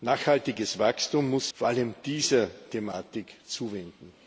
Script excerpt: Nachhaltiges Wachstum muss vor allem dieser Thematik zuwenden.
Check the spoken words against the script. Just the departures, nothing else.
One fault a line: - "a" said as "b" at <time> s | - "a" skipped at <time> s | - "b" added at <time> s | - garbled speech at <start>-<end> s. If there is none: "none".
none